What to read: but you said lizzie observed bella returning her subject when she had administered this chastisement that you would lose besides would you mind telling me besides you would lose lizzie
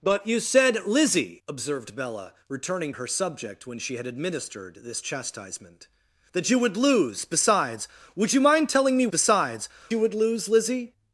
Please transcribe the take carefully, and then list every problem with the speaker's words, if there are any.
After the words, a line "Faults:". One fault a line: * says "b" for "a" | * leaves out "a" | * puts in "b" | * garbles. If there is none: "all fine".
but you said lizzie observed bella returning her subject when she had administered this chastisement that you would lose besides would you mind telling me besides you would lose lizzie
Faults:
all fine